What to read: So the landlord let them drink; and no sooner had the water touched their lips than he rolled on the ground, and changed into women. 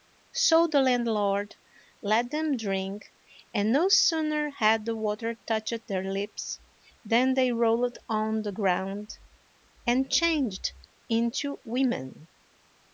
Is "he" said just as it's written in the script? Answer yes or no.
no